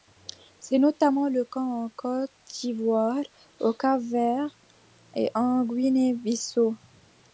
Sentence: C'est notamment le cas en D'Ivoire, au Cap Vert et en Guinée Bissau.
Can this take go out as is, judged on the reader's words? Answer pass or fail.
fail